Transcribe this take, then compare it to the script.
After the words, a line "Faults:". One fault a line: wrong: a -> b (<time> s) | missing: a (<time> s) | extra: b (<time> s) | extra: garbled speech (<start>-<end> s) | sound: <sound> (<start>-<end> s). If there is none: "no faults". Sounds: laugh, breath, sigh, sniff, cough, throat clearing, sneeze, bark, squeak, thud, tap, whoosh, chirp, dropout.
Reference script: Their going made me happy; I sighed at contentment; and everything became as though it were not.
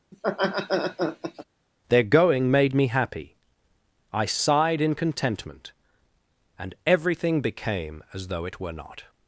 Their going made me happy; I sighed in contentment; and everything became as though it were not.
Faults:
sound: laugh (0.1-1.4 s)
wrong: at -> in (4.8 s)